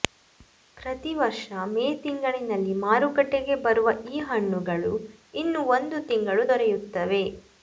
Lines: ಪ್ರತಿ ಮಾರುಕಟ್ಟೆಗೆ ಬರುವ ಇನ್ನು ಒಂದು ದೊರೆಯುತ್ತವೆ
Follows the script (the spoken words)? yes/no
no